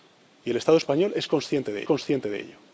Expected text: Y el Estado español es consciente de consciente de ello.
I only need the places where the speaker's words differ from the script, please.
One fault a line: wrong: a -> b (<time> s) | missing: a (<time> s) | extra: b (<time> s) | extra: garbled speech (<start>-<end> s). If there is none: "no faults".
no faults